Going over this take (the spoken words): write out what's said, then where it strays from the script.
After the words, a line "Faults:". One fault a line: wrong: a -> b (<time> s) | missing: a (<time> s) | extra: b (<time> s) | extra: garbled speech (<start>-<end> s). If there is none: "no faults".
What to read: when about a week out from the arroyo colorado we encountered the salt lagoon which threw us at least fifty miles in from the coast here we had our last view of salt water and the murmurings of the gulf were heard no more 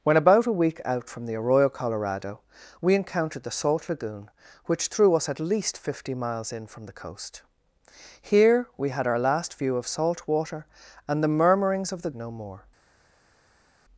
when about a week out from the arroyo colorado we encountered the salt lagoon which threw us at least fifty miles in from the coast here we had our last view of salt water and the murmurings of the no more
Faults:
missing: gulf were heard (12.1 s)